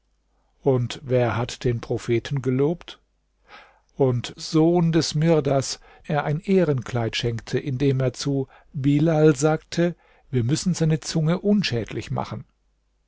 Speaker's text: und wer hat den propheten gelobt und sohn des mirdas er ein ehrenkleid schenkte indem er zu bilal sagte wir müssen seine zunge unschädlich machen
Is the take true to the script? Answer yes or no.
yes